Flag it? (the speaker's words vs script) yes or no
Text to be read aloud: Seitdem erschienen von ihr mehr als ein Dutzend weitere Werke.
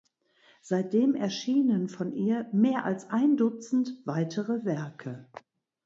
no